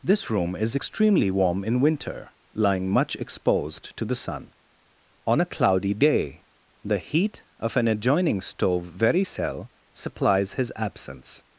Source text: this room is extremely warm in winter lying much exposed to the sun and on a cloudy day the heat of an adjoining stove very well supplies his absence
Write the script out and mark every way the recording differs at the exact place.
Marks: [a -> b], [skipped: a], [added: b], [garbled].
this room is extremely warm in winter lying much exposed to the sun [skipped: and] on a cloudy day the heat of an adjoining stove very [well -> cell] supplies his absence